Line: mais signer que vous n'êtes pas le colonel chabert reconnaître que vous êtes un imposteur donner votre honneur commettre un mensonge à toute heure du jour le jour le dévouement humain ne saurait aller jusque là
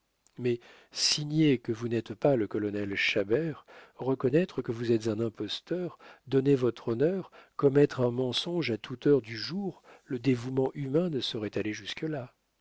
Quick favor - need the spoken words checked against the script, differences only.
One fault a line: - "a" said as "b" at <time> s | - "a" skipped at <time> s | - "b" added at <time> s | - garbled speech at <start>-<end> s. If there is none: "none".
- "jour le" skipped at 10.2 s